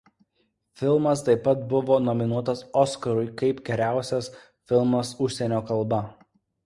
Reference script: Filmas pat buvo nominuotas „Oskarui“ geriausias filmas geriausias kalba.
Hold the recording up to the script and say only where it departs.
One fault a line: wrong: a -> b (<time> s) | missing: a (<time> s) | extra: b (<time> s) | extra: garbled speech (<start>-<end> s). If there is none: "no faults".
extra: taip (1.3 s)
extra: kaip (3.4 s)
wrong: geriausias -> užsienio (5.3 s)